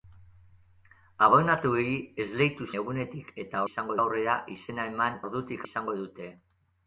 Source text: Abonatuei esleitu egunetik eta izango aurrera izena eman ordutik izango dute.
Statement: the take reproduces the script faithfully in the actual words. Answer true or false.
true